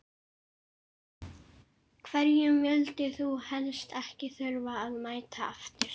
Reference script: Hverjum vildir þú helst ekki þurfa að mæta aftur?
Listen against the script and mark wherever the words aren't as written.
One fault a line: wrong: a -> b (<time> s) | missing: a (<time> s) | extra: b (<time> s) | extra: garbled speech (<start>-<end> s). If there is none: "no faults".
no faults